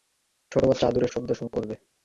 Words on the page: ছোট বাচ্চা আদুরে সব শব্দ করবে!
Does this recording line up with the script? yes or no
no